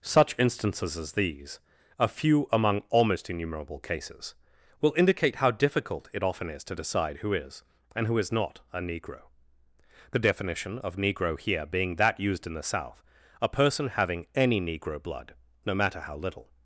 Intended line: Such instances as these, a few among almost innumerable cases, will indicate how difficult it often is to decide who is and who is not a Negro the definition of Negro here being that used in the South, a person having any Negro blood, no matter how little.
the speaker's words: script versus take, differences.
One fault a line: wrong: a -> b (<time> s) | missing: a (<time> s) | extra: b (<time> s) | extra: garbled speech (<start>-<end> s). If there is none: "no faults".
no faults